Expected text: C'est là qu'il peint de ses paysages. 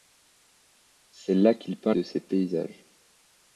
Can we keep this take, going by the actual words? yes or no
yes